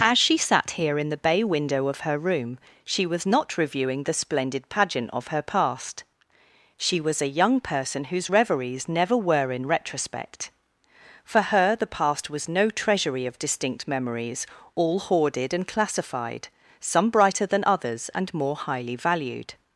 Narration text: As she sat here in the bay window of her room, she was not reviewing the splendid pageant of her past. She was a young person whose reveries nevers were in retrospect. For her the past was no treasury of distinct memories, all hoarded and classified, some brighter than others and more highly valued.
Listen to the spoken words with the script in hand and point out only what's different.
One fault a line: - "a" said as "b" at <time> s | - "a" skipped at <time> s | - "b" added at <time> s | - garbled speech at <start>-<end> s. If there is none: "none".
- "nevers" said as "never" at 8.9 s